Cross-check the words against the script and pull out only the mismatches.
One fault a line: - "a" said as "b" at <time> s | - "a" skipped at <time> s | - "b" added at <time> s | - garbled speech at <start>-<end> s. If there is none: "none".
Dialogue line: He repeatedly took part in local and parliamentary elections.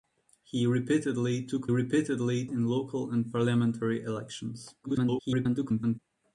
- "part" said as "repeatedly" at 1.7 s
- garbled speech at 4.8-6.0 s